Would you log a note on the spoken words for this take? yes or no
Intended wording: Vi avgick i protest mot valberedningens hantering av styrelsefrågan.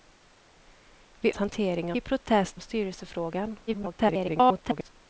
yes